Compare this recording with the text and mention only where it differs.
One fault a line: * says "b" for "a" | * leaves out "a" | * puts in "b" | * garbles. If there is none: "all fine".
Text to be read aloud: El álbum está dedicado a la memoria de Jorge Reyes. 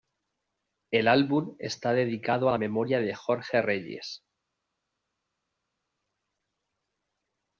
all fine